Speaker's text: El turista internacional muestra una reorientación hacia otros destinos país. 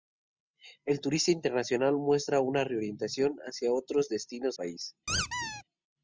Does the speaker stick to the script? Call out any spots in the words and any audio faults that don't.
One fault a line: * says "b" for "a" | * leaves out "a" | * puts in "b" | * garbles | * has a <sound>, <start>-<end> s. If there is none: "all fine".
* has a squeak, 5.1-5.6 s